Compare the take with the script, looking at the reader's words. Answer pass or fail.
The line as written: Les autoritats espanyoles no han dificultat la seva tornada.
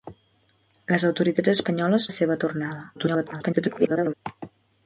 fail